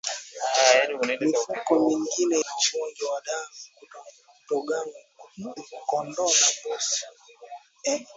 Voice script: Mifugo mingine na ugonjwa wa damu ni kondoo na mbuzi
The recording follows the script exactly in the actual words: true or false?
true